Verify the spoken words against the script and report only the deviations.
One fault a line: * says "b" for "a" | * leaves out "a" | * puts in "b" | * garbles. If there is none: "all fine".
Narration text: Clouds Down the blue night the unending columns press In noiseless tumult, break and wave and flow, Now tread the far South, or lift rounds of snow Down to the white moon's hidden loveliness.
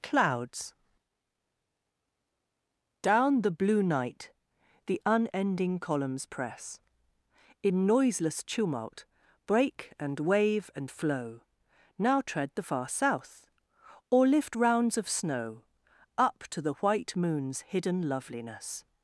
* says "Up" for "Down"